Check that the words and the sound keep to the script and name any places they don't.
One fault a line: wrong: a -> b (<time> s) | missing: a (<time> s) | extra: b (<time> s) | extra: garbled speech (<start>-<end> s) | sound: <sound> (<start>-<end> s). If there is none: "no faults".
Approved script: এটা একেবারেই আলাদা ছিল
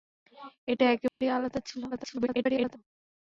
sound: dropout (1.1-1.2 s)
extra: garbled speech (1.9-2.8 s)